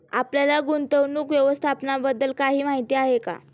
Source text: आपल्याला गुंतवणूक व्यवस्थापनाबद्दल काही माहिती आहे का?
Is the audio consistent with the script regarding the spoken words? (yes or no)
yes